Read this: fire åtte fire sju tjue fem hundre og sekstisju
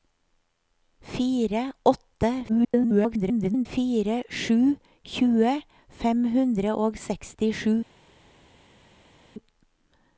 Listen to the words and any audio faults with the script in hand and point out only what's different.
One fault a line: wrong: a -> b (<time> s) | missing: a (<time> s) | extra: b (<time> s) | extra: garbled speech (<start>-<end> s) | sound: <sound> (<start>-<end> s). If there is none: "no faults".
extra: garbled speech (2.5-3.7 s)